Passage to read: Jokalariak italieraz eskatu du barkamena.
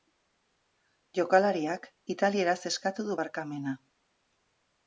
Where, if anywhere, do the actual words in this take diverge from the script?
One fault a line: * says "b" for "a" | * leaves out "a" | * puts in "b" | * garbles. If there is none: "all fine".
all fine